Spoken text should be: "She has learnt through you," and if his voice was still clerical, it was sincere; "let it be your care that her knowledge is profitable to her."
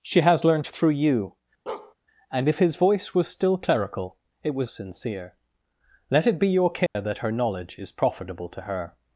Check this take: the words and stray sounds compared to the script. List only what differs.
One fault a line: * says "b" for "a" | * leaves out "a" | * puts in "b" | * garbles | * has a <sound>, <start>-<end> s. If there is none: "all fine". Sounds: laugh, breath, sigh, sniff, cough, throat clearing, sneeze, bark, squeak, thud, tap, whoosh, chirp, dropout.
* has a bark, 1.7-1.9 s
* has a dropout, 6.9-7.0 s